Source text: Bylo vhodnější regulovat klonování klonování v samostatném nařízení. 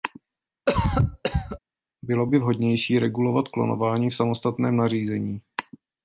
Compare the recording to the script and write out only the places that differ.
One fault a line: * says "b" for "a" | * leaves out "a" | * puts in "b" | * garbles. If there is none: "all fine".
* puts in "by"
* leaves out "klonování"